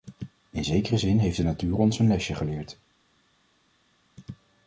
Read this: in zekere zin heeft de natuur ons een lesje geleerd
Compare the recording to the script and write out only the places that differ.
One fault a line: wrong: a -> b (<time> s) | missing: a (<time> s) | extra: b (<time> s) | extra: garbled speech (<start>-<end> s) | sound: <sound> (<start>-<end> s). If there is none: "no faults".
no faults